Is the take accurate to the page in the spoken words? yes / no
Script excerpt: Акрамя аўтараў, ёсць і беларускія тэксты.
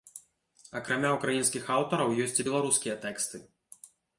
no